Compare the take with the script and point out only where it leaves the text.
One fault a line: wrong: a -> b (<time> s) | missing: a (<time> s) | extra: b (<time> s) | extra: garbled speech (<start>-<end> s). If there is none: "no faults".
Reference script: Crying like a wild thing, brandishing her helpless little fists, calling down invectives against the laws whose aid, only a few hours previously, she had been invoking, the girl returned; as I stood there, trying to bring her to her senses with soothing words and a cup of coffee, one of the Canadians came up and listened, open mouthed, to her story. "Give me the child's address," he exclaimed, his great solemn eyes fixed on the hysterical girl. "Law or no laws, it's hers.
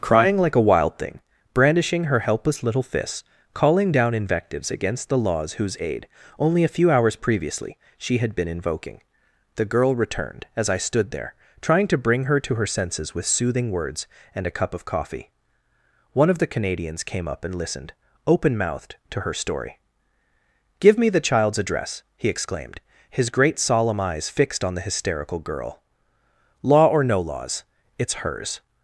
no faults